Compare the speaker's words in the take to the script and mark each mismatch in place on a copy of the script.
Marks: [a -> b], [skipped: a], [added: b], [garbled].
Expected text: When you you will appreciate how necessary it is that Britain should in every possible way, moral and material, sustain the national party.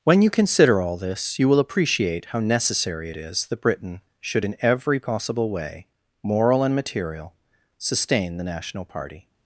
When you [added: consider all this] you will appreciate how necessary it is that Britain should in every possible way, moral and material, sustain the national party.